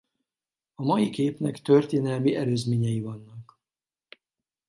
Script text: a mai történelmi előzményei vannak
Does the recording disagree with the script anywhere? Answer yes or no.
yes